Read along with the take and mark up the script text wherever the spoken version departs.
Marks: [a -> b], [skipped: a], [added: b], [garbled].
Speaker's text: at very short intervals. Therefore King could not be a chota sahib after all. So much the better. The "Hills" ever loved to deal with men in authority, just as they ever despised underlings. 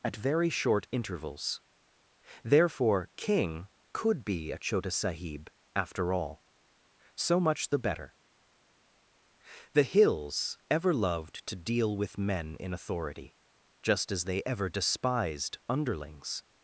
at very short intervals. Therefore King could [skipped: not] be a chota sahib after all. So much the better. The "Hills" ever loved to deal with men in authority, just as they ever despised underlings.